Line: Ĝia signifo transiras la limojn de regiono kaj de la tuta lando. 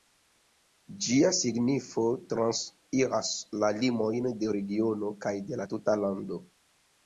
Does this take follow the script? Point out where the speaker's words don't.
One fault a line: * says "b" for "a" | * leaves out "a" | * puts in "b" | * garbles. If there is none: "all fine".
all fine